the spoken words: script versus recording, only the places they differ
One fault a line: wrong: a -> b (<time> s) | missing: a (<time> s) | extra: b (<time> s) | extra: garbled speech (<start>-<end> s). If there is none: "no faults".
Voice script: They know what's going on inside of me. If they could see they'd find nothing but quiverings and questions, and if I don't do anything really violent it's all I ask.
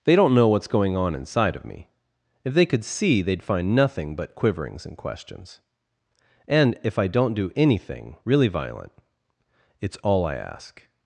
extra: don't (0.1 s)